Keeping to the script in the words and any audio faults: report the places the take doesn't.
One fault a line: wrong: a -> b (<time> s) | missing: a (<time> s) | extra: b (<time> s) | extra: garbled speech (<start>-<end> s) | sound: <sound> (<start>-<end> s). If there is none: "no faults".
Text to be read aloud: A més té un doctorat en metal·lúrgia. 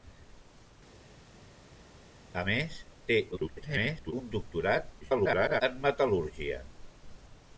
extra: garbled speech (3.3-4.1 s)
extra: garbled speech (5.0-5.6 s)